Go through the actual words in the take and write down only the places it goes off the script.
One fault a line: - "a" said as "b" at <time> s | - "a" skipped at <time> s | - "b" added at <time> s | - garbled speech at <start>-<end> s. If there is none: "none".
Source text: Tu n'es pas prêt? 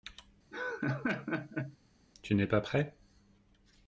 none